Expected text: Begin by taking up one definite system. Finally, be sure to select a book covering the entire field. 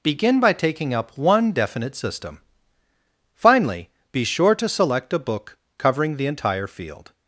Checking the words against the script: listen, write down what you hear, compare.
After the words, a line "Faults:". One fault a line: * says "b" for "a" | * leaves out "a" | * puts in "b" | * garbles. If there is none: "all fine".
Begin by taking up one definite system. Finally, be sure to select a book covering the entire field.
Faults:
all fine